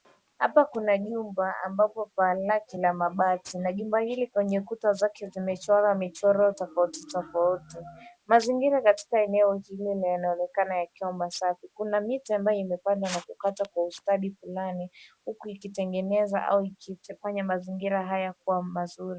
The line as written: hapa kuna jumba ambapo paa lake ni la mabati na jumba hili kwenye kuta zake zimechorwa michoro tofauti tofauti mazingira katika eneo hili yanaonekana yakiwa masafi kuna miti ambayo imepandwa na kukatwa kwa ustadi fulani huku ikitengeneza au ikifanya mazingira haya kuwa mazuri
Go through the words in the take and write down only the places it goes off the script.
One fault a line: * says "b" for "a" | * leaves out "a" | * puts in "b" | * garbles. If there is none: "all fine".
* leaves out "ni"